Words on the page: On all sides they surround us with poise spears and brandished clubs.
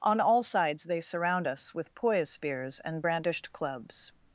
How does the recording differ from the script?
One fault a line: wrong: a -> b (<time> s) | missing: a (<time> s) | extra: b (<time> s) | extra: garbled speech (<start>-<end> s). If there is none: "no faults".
no faults